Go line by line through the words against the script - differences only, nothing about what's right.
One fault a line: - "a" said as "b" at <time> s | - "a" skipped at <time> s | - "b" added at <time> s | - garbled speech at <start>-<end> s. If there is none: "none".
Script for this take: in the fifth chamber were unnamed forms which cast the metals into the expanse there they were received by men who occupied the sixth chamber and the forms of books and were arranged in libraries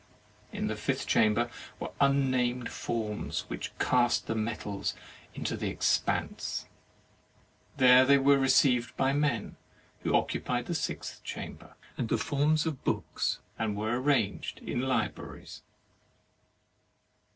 none